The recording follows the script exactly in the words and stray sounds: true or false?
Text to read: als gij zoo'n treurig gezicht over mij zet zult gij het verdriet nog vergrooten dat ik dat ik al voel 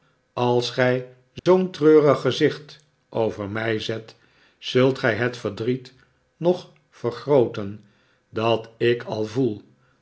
false